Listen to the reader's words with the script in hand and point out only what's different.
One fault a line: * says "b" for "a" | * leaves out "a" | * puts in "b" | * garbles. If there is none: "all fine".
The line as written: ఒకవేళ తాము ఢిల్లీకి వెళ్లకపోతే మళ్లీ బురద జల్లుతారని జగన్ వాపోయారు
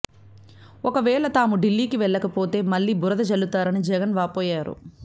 all fine